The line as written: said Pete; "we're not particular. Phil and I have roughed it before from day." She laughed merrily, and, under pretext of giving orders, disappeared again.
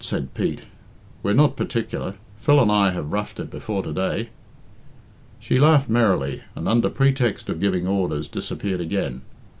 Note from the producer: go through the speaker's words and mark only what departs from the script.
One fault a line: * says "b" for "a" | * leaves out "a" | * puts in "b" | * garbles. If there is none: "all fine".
* says "to" for "from"